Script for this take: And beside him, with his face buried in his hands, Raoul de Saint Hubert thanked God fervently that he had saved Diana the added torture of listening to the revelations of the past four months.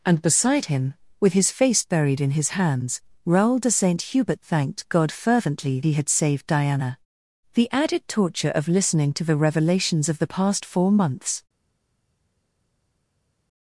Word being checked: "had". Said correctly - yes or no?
yes